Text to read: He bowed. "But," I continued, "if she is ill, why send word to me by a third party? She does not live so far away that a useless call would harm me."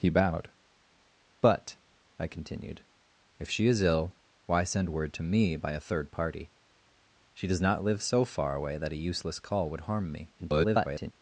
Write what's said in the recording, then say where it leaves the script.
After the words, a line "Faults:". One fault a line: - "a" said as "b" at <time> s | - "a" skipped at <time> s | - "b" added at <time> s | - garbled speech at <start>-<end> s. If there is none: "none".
He bowed. "But," I continued, "if she is ill, why send word to me by a third party? She does not live so far away that a useless call would harm me." [garbled]
Faults:
- garbled speech at 10.4-11.1 s